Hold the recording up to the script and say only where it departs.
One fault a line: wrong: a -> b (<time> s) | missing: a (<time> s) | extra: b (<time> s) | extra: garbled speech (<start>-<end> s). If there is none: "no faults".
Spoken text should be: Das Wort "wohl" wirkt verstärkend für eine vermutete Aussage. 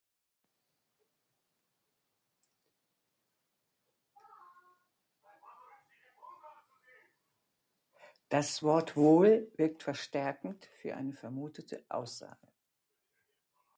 no faults